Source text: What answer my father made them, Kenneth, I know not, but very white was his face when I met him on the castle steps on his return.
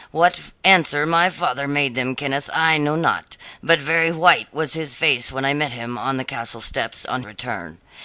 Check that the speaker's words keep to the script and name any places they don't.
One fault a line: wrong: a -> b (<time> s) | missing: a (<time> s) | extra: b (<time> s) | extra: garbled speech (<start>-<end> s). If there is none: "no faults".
missing: his (7.2 s)